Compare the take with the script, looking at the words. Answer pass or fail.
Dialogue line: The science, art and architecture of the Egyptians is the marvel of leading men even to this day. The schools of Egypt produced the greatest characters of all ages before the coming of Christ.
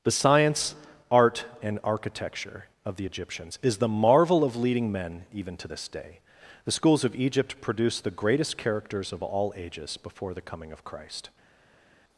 pass